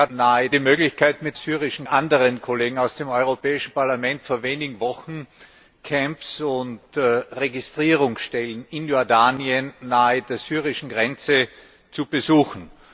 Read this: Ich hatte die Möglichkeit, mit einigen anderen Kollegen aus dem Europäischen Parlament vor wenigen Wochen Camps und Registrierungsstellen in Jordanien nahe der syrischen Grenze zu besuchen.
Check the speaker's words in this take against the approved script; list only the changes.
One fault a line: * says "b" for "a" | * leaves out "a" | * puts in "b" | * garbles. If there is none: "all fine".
* says "nahe" for "hatte"
* says "syrischen" for "einigen"